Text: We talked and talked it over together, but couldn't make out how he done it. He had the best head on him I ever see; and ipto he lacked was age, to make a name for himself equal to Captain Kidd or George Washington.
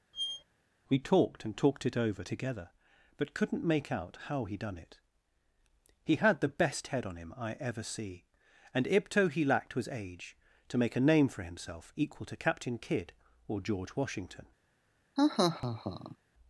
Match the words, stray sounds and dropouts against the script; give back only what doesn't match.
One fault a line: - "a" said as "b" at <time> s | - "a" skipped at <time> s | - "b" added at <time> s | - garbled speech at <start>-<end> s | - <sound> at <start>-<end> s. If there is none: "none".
- squeak at 0.1-0.4 s
- laugh at 15.2-16.2 s